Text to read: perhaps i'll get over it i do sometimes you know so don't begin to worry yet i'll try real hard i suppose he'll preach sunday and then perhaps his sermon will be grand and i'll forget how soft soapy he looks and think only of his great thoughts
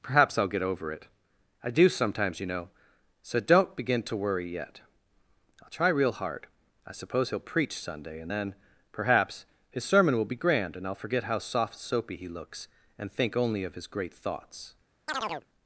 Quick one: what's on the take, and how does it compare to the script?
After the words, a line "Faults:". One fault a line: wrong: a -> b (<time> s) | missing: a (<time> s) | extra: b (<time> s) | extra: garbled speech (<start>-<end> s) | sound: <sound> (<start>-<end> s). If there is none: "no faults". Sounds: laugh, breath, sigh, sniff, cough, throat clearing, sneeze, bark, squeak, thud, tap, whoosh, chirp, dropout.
perhaps i'll get over it i do sometimes you know so don't begin to worry yet i'll try real hard i suppose he'll preach sunday and then perhaps his sermon will be grand and i'll forget how soft soapy he looks and think only of his great thoughts
Faults:
sound: chirp (15.1-15.5 s)